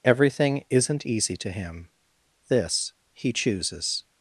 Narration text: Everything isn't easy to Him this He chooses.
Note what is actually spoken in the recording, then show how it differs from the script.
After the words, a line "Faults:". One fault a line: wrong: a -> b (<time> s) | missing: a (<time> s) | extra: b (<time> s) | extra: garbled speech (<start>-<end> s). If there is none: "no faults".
Everything isn't easy to Him this He chooses.
Faults:
no faults